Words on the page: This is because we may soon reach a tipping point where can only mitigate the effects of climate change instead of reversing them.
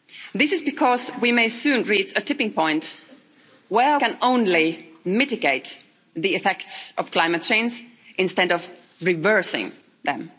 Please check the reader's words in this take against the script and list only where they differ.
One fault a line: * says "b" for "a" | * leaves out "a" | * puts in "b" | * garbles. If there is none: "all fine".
all fine